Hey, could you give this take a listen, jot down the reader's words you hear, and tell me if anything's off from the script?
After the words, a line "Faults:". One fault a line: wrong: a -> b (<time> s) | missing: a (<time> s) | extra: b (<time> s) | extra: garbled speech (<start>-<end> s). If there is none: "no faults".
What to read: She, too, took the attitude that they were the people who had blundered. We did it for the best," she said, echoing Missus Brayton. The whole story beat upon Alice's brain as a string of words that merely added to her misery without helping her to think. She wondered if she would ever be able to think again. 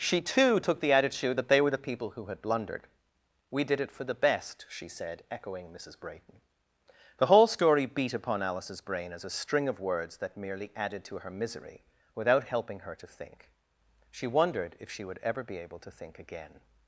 She, too, took the attitude that they were the people who had blundered. We did it for the best," she said, echoing Missus Brayton. The whole story beat upon Alice's brain as a string of words that merely added to her misery without helping her to think. She wondered if she would ever be able to think again.
Faults:
no faults